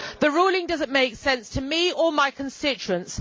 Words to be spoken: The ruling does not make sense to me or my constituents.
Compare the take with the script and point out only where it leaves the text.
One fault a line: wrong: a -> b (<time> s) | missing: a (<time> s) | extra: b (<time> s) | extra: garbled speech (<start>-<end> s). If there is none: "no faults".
no faults